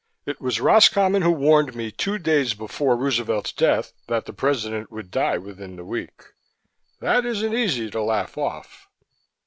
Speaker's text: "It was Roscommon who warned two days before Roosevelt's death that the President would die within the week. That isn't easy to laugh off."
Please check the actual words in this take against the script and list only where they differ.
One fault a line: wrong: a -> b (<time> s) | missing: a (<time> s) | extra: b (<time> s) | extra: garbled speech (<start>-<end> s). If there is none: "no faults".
extra: me (1.8 s)